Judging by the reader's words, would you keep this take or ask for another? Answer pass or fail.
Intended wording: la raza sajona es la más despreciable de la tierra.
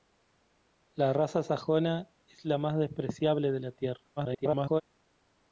fail